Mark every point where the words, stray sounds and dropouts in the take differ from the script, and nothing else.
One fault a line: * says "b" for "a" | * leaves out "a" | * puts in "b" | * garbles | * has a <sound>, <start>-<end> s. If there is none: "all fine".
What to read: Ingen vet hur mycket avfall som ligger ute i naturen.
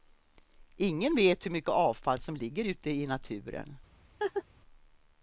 * has a laugh, 4.2-4.4 s